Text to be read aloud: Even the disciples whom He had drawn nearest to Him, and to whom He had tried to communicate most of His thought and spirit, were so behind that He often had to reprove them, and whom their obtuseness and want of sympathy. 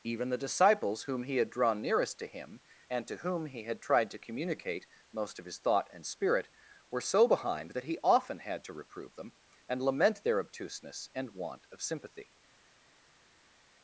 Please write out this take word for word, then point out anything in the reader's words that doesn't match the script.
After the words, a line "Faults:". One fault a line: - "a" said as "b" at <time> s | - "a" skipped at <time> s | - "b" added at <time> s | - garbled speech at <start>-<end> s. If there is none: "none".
Even the disciples whom He had drawn nearest to Him, and to whom He had tried to communicate most of His thought and spirit, were so behind that He often had to reprove them, and lament their obtuseness and want of sympathy.
Faults:
- "whom" said as "lament" at 9.8 s